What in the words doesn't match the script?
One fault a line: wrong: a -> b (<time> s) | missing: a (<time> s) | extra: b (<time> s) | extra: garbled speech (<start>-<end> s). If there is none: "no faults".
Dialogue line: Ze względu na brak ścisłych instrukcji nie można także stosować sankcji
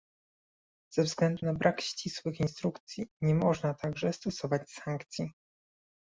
no faults